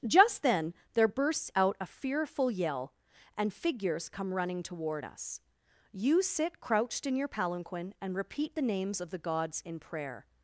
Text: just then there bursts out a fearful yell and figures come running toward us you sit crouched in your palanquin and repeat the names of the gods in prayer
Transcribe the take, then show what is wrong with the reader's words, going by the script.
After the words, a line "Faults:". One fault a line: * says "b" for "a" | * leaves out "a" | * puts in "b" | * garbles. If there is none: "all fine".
just then there bursts out a fearful yell and figures come running toward us you sit crouched in your palanquin and repeat the names of the gods in prayer
Faults:
all fine